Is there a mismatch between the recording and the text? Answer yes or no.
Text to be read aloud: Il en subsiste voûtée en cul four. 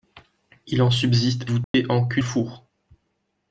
no